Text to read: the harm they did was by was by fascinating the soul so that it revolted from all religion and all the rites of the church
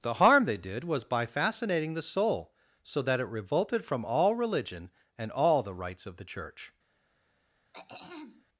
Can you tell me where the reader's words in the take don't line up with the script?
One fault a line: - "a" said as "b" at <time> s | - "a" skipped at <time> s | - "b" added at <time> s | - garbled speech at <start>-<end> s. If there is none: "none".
- "was by" skipped at 1.2 s